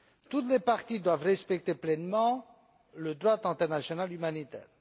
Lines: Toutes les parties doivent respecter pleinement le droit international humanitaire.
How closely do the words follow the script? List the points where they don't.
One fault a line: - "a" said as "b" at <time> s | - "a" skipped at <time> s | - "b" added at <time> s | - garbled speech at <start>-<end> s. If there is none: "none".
none